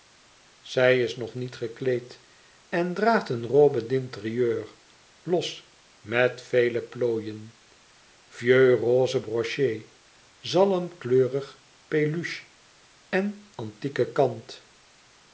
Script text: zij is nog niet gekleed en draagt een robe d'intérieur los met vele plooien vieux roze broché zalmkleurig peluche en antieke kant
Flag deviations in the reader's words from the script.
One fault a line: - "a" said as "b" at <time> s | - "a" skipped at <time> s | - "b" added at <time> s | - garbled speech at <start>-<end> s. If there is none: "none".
none